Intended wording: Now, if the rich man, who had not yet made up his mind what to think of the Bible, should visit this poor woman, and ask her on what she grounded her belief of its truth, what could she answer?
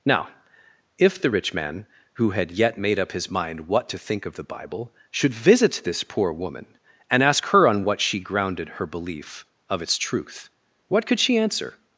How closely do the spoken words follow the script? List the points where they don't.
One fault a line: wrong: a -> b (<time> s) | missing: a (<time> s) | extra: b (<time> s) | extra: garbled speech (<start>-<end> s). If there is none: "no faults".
missing: not (2.5 s)